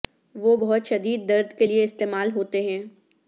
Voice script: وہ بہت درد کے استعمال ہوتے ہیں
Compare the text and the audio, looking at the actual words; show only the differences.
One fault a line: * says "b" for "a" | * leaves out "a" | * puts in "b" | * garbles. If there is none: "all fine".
* puts in "شدید"
* puts in "لئے"